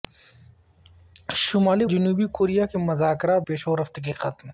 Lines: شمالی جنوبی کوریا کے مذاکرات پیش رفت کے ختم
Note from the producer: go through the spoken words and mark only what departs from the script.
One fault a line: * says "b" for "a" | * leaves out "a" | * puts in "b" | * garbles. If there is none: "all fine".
all fine